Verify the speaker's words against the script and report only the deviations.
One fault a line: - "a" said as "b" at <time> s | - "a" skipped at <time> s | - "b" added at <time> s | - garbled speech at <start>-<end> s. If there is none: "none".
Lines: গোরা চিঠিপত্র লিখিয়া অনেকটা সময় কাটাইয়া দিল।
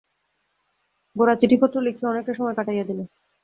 none